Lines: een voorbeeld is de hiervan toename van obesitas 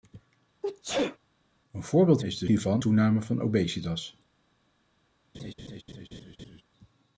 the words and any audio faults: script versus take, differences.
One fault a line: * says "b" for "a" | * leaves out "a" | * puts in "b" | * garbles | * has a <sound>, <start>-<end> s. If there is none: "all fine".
* has a sneeze, 0.6-1.2 s
* has a laugh, 5.3-6.6 s